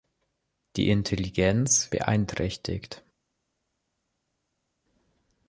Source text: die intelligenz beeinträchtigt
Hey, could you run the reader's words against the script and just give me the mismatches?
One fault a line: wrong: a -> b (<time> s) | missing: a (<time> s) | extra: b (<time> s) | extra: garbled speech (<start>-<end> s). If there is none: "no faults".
no faults